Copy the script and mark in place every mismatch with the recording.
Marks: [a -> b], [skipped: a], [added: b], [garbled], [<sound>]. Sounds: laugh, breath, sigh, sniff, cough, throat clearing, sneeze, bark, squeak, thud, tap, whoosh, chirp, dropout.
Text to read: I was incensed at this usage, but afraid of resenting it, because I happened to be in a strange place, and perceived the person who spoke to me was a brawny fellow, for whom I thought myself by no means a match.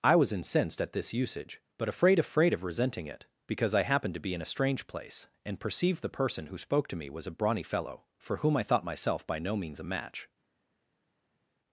I was incensed at this usage, but afraid [added: afraid] of resenting it, because I happened to be in a strange place, and perceived the person who spoke to me was a brawny fellow, for whom I thought myself by no means a match.